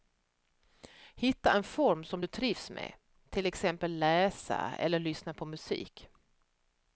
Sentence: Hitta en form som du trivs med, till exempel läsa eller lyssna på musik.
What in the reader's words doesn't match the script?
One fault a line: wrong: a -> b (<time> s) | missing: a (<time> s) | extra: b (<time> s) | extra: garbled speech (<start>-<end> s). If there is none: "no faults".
no faults